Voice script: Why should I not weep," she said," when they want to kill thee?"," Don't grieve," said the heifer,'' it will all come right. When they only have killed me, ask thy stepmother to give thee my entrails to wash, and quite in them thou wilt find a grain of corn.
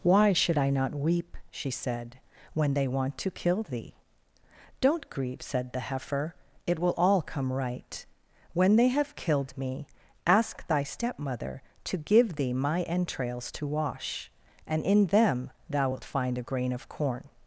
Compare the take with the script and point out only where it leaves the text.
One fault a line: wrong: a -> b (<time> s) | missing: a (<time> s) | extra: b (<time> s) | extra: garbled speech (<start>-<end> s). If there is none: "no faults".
missing: only (8.9 s)
missing: quite (14.9 s)